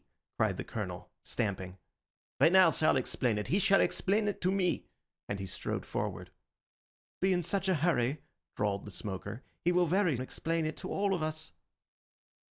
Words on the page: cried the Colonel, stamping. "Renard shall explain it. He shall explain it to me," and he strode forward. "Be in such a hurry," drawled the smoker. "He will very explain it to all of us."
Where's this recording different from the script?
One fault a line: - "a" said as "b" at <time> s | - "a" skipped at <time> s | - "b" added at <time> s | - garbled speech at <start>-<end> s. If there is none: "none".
none